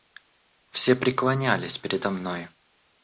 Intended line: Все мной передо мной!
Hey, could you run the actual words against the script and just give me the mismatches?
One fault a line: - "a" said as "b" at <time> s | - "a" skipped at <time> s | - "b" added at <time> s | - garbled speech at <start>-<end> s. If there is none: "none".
- "мной" said as "преклонялись" at 0.9 s